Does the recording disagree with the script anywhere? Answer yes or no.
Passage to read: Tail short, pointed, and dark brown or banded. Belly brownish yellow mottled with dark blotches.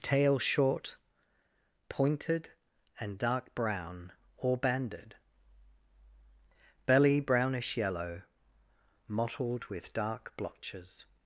no